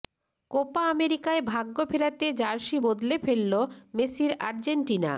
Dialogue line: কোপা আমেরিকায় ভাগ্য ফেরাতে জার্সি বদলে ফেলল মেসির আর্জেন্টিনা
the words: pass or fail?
pass